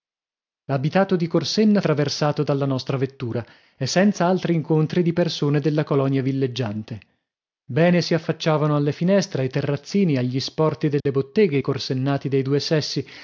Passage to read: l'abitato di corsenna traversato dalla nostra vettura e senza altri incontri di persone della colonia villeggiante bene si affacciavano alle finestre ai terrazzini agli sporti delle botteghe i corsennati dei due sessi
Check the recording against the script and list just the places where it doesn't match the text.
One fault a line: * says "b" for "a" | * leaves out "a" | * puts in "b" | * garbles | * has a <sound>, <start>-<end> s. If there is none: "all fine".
* has a dropout, 11.0-11.1 s